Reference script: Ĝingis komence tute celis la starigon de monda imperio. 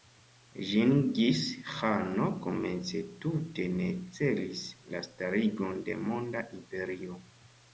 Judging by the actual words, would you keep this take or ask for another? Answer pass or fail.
fail